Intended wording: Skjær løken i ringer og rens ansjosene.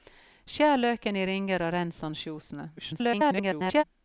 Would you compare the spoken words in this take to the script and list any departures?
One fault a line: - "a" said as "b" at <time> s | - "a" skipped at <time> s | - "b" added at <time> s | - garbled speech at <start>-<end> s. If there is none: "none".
- garbled speech at 2.8-3.8 s